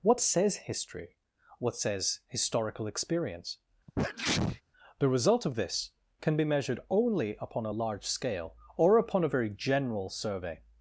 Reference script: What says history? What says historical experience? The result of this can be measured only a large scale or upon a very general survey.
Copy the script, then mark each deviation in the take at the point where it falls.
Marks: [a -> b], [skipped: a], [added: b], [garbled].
What says history? What says historical experience? The result of this can be measured only [added: upon] a large scale or upon a very general survey.